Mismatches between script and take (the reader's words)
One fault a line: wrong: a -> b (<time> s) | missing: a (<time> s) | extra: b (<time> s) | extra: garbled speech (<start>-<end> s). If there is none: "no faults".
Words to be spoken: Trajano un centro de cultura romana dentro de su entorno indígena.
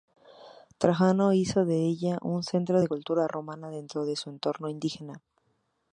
extra: hizo de ella (1.3 s)